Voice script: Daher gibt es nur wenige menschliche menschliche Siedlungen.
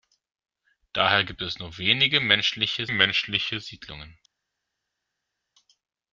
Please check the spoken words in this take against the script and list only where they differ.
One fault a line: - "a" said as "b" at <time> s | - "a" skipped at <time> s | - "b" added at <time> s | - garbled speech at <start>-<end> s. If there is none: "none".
none